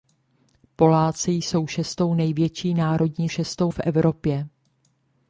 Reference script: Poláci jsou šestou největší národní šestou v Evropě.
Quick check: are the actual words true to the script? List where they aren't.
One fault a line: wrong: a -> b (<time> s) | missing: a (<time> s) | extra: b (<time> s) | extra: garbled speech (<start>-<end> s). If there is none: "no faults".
no faults